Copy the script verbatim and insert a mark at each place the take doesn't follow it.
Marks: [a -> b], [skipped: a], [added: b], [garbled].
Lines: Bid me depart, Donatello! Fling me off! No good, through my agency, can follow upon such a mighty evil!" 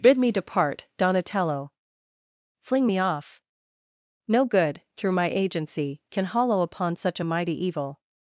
Bid me depart, Donatello! Fling me off! No good, through my agency, can [follow -> hollow] upon such a mighty evil!"